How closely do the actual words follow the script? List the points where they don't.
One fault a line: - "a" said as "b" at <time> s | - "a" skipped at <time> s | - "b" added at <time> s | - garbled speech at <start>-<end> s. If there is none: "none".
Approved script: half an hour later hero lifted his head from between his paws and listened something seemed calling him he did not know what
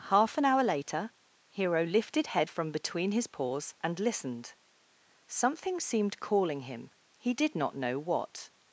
- "his" skipped at 2.3 s